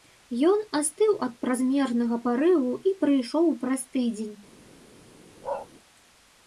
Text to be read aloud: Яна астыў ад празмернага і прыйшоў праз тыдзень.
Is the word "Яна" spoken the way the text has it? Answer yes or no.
no